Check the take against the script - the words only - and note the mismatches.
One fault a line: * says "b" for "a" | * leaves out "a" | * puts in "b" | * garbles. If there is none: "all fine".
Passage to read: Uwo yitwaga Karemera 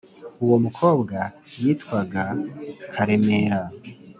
* puts in "mukobwa"